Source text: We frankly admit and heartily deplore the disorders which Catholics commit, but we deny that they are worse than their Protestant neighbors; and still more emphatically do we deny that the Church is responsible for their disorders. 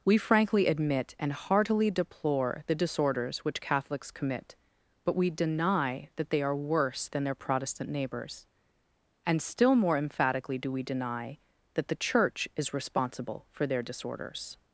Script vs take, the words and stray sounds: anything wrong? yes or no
no